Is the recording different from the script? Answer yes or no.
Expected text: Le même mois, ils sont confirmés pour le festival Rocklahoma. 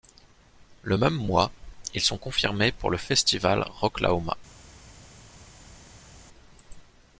no